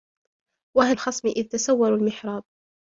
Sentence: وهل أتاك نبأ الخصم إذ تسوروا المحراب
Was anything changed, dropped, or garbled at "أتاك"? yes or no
yes